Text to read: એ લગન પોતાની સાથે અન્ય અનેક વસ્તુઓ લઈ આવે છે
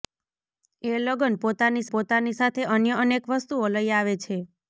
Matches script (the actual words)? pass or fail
fail